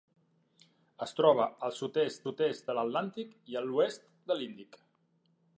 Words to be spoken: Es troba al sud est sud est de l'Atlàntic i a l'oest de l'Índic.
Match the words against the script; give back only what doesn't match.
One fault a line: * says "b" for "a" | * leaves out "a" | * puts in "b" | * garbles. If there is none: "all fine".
all fine